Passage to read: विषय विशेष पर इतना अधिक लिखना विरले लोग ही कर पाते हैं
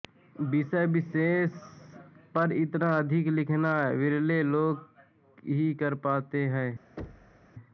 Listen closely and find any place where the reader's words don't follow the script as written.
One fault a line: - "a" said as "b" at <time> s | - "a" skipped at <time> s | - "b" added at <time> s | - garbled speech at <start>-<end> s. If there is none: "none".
none